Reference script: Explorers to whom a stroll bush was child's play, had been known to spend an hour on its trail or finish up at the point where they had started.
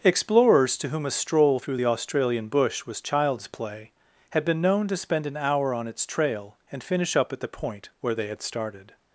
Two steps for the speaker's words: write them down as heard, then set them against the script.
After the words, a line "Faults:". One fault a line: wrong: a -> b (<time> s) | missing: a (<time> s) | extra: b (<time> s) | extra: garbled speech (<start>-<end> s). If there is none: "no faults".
Explorers to whom a stroll through the Australian bush was child's play, had been known to spend an hour on its trail and finish up at the point where they had started.
Faults:
extra: through the Australian (1.6 s)
wrong: or -> and (6.7 s)